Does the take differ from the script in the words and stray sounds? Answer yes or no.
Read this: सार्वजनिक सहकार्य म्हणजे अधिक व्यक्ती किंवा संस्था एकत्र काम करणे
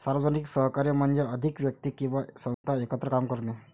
yes